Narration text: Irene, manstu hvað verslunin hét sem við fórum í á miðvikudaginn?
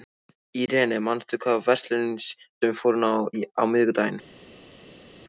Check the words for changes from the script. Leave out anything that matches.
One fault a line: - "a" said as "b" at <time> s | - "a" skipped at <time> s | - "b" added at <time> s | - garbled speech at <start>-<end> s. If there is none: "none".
- "hét" skipped at 2.1 s